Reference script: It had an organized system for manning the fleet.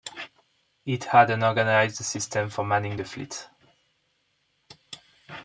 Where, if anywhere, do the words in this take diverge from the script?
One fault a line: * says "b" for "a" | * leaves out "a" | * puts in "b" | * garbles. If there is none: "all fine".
all fine